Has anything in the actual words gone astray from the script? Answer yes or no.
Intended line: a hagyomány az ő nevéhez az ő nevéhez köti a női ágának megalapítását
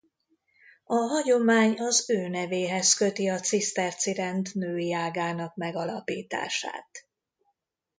yes